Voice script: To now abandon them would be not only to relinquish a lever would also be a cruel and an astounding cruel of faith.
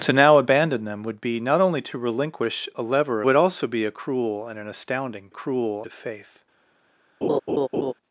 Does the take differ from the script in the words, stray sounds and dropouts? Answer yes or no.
yes